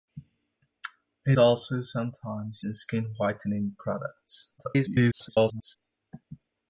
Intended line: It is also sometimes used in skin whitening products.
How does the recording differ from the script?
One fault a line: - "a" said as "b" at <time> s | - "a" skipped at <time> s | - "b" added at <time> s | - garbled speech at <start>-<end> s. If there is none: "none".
- "is" skipped at 1.4 s
- "used" skipped at 2.6 s
- garbled speech at 4.6-5.8 s